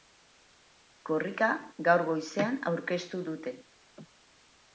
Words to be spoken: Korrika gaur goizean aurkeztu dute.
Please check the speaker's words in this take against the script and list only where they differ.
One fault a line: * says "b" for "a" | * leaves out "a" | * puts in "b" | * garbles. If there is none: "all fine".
all fine